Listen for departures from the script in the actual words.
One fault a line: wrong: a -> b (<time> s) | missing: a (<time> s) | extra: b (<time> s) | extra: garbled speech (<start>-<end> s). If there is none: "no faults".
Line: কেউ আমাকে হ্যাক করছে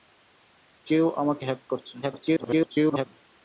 extra: garbled speech (2.0-3.1 s)